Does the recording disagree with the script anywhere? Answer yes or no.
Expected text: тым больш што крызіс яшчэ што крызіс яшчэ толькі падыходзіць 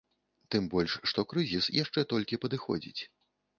yes